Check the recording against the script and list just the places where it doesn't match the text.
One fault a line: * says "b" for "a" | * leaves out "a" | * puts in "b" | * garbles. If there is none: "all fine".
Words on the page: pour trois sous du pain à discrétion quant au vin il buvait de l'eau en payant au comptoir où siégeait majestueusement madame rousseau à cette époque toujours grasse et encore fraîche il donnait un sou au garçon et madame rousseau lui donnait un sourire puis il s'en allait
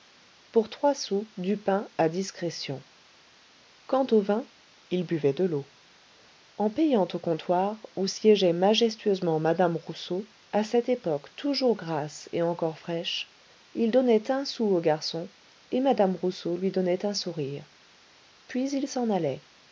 all fine